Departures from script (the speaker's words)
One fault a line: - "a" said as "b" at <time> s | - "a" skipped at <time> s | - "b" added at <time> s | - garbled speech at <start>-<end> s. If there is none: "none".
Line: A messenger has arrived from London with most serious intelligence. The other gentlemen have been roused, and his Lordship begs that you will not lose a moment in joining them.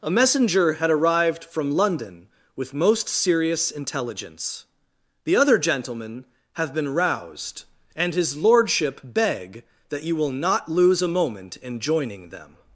- "has" said as "had" at 0.7 s
- "begs" said as "beg" at 9.0 s